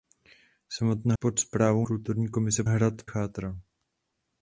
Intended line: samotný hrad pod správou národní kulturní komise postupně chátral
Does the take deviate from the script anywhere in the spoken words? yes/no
yes